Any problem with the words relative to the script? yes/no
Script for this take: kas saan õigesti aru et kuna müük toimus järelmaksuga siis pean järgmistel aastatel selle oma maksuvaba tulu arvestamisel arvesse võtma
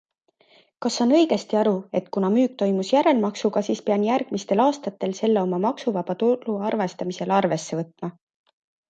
no